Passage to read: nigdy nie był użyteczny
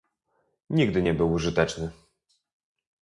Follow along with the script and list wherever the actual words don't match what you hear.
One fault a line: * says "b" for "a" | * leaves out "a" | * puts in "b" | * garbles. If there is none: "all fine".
all fine